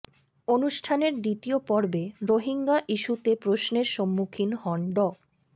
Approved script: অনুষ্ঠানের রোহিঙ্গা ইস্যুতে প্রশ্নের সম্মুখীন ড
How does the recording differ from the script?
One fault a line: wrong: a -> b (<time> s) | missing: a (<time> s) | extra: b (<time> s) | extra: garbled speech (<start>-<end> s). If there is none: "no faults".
extra: দ্বিতীয় পর্বে (1.2 s)
extra: হন (4.6 s)